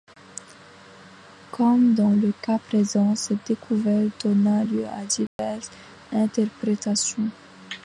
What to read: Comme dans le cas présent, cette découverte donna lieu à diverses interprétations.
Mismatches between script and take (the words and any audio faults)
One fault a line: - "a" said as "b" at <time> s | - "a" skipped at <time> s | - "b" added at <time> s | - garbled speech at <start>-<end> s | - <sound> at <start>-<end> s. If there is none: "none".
- dropout at 5.3-5.4 s